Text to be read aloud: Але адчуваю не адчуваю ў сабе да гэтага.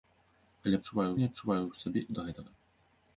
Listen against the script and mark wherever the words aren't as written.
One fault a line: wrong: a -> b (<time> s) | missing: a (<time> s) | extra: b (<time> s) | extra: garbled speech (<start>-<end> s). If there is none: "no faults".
no faults